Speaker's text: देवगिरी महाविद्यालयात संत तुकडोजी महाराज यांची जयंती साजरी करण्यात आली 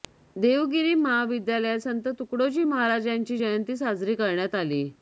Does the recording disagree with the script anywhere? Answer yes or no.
no